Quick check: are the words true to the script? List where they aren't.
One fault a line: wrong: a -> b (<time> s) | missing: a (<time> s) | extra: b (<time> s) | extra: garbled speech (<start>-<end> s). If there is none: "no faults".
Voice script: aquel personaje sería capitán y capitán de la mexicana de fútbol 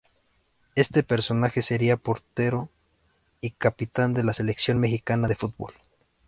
wrong: aquel -> este (0.7 s)
wrong: capitán -> portero (1.9 s)
extra: selección (4.3 s)